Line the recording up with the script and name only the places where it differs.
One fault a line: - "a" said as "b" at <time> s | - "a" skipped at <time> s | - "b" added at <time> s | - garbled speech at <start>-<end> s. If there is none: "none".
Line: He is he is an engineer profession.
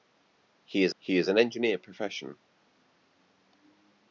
none